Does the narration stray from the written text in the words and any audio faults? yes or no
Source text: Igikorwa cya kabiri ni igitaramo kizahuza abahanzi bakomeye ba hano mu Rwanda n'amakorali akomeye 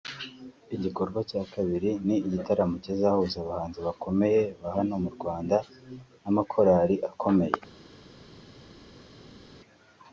no